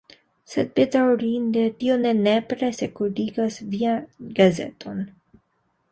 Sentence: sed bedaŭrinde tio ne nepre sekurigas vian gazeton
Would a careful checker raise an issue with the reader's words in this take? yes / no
no